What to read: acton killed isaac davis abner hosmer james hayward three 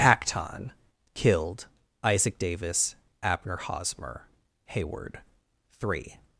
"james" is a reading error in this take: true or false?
true